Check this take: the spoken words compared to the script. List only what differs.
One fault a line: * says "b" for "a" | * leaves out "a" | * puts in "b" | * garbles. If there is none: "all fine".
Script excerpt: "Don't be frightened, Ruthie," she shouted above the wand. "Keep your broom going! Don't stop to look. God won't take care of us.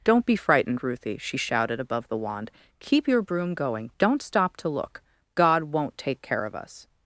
all fine